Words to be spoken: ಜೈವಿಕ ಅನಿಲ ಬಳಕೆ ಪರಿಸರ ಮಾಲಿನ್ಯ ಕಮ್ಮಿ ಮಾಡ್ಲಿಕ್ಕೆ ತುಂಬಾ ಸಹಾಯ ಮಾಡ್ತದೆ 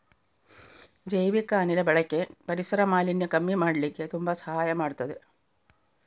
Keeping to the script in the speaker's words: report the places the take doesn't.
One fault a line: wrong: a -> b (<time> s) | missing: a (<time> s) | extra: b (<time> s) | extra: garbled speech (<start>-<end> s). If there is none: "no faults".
no faults